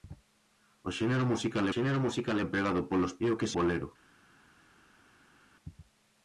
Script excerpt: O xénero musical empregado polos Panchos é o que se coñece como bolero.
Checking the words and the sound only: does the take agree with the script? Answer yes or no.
no